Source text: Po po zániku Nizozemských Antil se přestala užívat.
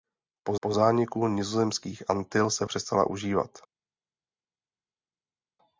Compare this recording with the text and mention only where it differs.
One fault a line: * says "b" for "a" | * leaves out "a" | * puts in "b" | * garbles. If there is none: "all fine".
all fine